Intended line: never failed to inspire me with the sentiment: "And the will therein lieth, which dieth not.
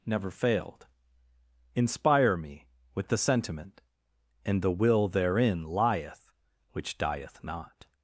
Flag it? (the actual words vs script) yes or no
yes